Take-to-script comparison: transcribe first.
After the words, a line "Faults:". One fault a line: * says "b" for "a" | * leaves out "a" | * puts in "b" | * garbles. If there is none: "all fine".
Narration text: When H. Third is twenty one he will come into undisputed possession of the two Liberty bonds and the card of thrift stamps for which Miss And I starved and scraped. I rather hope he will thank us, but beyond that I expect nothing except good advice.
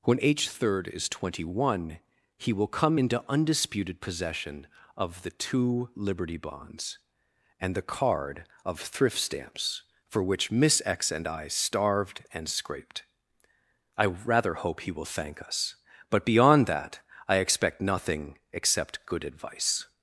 When H. Third is twenty one he will come into undisputed possession of the two Liberty bonds and the card of thrift stamps for which Miss X and I starved and scraped. I rather hope he will thank us, but beyond that I expect nothing except good advice.
Faults:
* puts in "X"